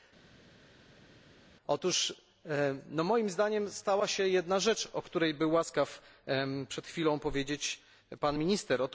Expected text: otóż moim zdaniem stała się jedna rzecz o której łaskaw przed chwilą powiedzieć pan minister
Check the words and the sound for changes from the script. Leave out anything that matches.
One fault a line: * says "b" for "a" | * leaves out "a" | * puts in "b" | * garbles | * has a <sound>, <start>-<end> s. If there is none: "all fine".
* puts in "był"